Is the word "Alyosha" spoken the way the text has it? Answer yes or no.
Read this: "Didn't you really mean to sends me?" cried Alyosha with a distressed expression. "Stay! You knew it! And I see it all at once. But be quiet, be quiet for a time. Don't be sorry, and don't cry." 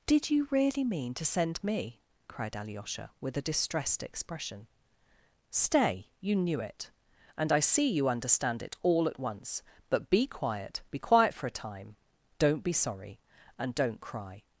yes